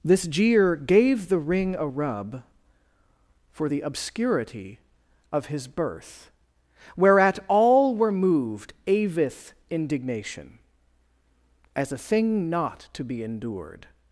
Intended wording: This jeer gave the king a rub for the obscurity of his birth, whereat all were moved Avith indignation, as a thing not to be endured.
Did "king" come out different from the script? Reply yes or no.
yes